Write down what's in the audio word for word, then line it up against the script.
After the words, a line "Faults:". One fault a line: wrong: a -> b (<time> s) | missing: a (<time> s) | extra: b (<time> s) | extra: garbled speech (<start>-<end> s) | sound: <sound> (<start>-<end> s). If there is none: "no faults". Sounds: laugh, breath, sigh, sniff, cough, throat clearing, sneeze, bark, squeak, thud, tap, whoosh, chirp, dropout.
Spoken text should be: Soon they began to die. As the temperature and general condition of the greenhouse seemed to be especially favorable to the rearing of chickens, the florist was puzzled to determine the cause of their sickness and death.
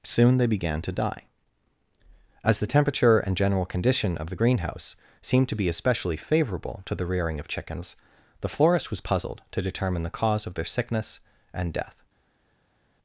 Soon they began to die. As the temperature and general condition of the greenhouse seemed to be especially favorable to the rearing of chickens, the florist was puzzled to determine the cause of their sickness and death.
Faults:
no faults